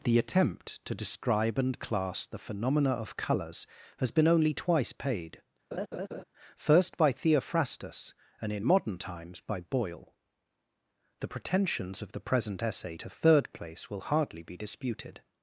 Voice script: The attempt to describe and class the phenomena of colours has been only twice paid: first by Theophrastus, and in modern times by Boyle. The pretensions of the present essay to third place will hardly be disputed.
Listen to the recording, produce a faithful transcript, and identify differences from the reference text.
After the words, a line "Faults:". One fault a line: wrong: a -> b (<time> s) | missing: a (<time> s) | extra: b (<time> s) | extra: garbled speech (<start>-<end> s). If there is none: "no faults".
The attempt to describe and class the phenomena of colours has been only twice paid: first by Theophrastus, and in modern times by Boyle. The pretensions of the present essay to third place will hardly be disputed.
Faults:
no faults